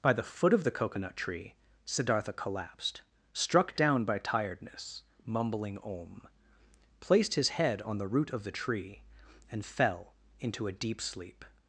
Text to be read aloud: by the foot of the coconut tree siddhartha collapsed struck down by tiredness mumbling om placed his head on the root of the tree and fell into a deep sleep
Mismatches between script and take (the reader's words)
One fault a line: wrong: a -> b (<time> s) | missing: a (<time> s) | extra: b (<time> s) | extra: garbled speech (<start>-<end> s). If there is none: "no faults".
no faults